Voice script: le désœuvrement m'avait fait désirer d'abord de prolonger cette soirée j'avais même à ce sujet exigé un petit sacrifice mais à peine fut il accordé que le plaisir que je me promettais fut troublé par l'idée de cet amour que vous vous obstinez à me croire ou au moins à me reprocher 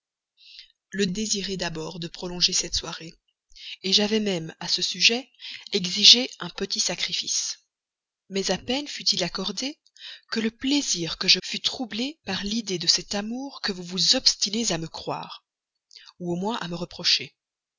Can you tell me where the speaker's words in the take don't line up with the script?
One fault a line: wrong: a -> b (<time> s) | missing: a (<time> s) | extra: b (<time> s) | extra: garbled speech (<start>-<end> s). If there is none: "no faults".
missing: désœuvrement m'avait fait (1.1 s)
missing: me promettais (11.4 s)